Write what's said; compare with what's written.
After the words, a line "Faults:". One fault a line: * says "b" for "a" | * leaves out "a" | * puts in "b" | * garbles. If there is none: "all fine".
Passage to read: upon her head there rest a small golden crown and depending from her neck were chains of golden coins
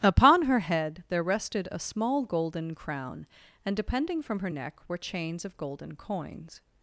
upon her head there rested a small golden crown and depending from her neck were chains of golden coins
Faults:
* says "rested" for "rest"